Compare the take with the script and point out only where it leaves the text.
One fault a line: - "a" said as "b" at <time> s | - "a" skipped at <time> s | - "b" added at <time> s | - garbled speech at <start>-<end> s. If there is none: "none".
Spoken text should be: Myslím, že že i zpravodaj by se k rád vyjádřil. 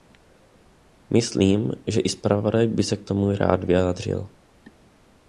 - "že" skipped at 2.0 s
- "tomu" added at 3.0 s